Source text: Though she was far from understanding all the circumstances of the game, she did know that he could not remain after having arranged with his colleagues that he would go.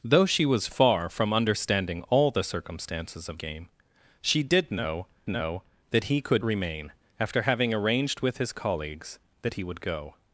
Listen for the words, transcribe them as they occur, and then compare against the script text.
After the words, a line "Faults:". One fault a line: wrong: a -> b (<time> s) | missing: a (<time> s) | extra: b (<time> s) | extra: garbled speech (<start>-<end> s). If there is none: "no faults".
Though she was far from understanding all the circumstances of game, she did know know that he could remain after having arranged with his colleagues that he would go.
Faults:
missing: the (3.4 s)
extra: know (5.3 s)
missing: not (6.4 s)